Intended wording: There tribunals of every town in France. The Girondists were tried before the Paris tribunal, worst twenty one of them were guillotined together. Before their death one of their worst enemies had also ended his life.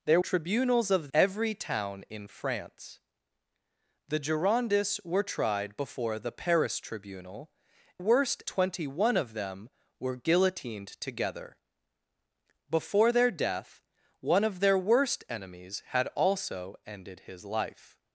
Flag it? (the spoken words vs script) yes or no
no